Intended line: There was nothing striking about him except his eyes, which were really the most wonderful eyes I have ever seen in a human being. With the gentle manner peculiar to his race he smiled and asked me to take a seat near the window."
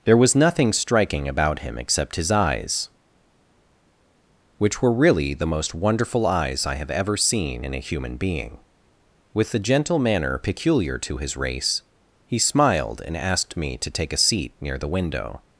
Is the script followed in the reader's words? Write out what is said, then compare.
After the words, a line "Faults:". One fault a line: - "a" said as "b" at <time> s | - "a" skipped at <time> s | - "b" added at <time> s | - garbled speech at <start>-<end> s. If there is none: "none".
There was nothing striking about him except his eyes, which were really the most wonderful eyes I have ever seen in a human being. With the gentle manner peculiar to his race he smiled and asked me to take a seat near the window."
Faults:
none